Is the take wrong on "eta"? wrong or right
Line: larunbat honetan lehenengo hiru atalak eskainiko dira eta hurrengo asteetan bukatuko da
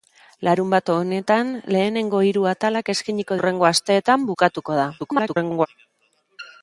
wrong